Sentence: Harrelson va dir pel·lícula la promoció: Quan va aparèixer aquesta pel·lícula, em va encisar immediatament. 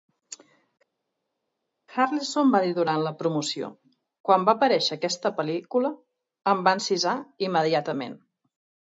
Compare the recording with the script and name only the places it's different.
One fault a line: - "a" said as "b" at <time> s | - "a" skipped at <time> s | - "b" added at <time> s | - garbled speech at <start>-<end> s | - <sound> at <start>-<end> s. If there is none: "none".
- "pel·lícula" said as "durant" at 2.8 s